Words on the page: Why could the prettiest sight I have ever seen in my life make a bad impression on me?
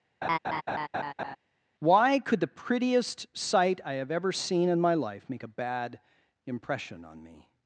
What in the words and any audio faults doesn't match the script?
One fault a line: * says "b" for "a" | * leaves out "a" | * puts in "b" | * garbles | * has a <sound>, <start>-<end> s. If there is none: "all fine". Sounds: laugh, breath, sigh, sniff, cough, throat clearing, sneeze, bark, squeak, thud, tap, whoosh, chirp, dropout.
* has a laugh, 0.2-1.4 s